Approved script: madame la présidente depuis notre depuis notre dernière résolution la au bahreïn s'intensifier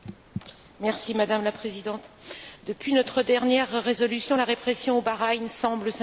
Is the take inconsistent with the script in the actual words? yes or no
yes